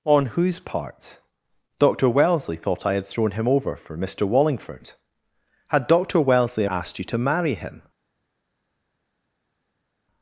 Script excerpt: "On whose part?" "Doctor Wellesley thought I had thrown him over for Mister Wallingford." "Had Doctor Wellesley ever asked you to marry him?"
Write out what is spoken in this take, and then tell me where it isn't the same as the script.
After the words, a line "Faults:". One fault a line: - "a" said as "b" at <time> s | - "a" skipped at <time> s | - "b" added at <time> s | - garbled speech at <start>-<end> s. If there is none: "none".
"On whose part?" "Doctor Wellesley thought I had thrown him over for Mister Wallingford." "Had Doctor Wellesley asked you to marry him?"
Faults:
- "ever" skipped at 6.7 s